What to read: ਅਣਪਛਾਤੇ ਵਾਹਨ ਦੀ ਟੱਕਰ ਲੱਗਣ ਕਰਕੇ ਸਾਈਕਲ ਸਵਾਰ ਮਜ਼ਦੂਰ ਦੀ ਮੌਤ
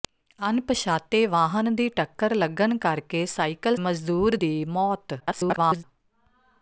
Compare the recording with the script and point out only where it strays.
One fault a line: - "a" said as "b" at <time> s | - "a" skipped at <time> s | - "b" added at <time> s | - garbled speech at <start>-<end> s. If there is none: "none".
- "ਸਵਾਰ" skipped at 3.8 s
- garbled speech at 5.2-5.8 s